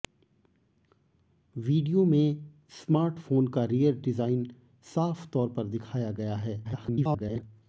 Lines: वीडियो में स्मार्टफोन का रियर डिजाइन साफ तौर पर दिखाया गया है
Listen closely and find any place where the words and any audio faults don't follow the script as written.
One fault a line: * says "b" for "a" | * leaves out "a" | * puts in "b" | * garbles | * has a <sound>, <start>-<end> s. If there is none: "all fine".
* garbles